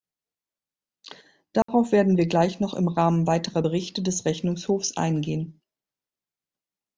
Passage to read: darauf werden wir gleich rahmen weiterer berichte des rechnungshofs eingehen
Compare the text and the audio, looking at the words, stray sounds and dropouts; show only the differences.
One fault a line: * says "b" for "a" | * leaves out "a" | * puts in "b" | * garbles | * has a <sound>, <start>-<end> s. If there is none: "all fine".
* has a dropout, 1.6-1.7 s
* puts in "noch im"